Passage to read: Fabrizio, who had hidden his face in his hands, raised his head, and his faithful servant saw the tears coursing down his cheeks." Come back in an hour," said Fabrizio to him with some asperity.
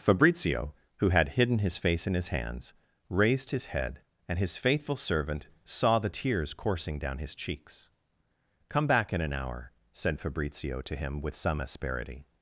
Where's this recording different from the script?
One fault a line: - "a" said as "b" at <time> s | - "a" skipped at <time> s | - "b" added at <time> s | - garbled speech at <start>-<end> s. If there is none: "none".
none